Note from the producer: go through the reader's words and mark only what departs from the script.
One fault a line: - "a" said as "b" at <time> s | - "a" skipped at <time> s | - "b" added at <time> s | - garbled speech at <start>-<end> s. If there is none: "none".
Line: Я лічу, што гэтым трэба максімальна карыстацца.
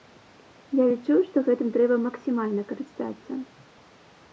none